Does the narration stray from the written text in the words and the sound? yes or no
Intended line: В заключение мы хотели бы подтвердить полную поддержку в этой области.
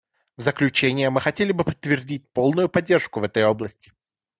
no